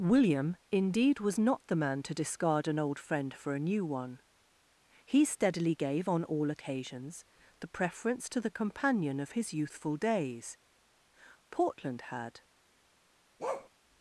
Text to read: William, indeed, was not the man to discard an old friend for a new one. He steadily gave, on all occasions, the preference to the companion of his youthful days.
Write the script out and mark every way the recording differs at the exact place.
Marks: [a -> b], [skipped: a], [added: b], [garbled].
William, indeed, was not the man to discard an old friend for a new one. He steadily gave, on all occasions, the preference to the companion of his youthful days. [added: Portland had]